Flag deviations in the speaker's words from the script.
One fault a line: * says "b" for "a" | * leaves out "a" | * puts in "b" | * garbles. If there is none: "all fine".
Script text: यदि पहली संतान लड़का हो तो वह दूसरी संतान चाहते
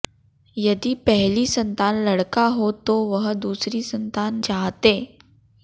all fine